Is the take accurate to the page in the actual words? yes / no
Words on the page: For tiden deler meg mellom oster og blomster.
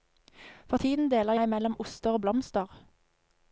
yes